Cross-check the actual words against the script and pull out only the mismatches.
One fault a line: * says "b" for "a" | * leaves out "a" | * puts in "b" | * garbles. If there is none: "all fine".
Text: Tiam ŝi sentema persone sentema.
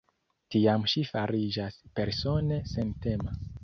* says "fariĝas" for "sentema"